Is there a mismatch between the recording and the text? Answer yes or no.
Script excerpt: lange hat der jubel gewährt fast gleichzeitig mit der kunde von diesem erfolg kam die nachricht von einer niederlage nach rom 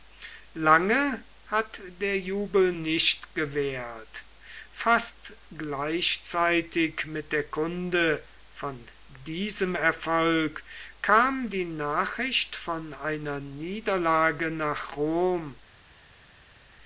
yes